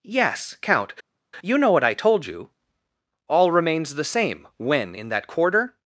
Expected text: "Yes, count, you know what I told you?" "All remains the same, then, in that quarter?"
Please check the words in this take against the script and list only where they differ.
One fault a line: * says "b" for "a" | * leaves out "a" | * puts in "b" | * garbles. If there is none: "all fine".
* says "when" for "then"